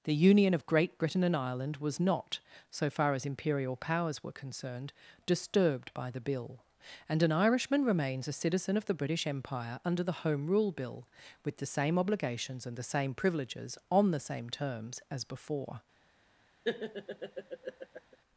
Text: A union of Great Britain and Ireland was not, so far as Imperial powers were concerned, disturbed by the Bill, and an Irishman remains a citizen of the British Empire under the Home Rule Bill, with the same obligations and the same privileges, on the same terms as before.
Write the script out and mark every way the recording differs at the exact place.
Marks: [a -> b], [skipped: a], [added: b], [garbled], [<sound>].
[A -> The] union of Great Britain and Ireland was not, so far as Imperial powers were concerned, disturbed by the Bill, and an Irishman remains a citizen of the British Empire under the Home Rule Bill, with the same obligations and the same privileges, on the same terms as before. [laugh]